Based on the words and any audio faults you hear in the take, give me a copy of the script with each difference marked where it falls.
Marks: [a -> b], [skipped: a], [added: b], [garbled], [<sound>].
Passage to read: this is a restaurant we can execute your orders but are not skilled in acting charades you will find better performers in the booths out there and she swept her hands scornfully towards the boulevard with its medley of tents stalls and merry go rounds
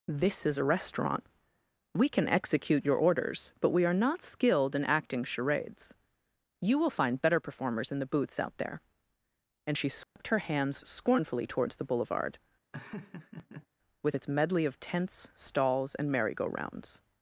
this is a restaurant we can execute your orders but [added: we] are not skilled in acting charades you will find better performers in the booths out there and she swept [dropout] her hands scornfully towards the boulevard [laugh] with its medley of tents stalls and merry go rounds